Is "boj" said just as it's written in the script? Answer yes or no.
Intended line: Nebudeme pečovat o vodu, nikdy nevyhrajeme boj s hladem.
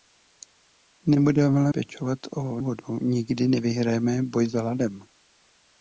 yes